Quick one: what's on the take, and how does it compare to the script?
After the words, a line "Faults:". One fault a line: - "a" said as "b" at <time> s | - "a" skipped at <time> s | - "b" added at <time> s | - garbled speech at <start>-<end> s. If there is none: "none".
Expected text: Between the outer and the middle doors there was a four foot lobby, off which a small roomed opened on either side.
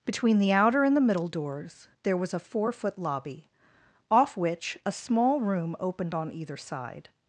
Between the outer and the middle doors there was a four foot lobby, off which a small room opened on either side.
Faults:
- "roomed" said as "room" at 5.4 s